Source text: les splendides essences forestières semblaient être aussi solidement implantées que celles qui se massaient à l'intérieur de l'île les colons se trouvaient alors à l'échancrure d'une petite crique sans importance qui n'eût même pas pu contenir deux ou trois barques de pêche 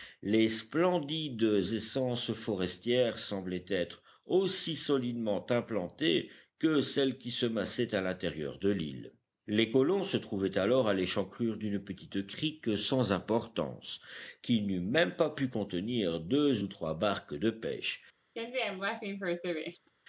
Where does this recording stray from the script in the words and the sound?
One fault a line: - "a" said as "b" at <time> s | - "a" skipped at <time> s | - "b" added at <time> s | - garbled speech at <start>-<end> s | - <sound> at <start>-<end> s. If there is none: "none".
- laugh at 18.4-19.9 s